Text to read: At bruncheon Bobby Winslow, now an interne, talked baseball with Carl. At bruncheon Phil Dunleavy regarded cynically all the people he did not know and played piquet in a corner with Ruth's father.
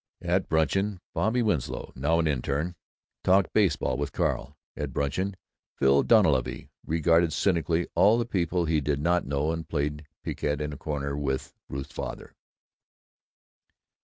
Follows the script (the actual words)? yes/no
yes